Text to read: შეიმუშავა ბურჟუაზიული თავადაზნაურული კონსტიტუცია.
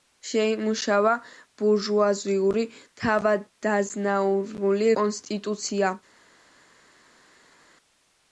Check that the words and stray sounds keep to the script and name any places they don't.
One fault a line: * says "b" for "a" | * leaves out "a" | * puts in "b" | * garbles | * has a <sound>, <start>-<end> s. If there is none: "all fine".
all fine